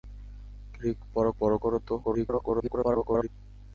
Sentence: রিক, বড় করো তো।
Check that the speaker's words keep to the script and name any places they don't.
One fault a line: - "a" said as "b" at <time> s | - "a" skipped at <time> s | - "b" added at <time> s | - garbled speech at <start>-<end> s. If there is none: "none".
- "বড়" added at 1.4 s
- garbled speech at 2.0-3.3 s